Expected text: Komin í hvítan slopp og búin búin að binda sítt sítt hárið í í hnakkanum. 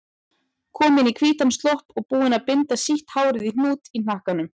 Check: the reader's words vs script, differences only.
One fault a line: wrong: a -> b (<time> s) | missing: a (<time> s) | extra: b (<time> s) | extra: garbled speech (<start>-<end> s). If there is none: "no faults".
missing: búin (2.4 s)
missing: sítt (3.1 s)
extra: hnút (3.5 s)